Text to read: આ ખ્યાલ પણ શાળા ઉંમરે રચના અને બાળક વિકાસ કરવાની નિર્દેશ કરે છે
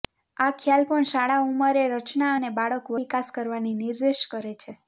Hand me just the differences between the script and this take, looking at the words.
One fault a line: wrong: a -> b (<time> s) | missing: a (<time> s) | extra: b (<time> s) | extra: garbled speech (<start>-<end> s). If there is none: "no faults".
no faults